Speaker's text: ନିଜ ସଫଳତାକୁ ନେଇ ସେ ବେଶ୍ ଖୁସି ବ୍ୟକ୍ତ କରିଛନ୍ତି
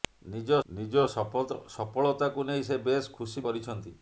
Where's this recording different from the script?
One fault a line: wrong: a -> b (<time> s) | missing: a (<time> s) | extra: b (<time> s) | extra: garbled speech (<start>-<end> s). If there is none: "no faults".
extra: ନିଜ (0.7 s)
missing: ବ୍ୟକ୍ତ (3.5 s)